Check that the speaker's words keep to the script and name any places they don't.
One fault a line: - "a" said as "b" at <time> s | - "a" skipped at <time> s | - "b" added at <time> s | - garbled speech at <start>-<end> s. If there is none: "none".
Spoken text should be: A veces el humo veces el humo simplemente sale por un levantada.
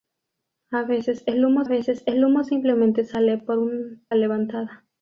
none